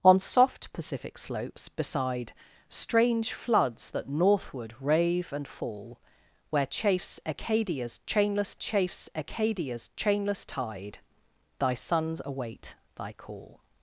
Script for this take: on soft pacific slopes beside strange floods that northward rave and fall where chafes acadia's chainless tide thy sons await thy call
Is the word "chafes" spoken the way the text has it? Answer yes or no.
yes